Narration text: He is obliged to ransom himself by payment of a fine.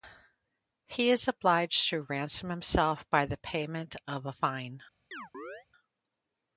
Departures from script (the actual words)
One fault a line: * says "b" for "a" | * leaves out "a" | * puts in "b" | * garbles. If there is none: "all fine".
* puts in "the"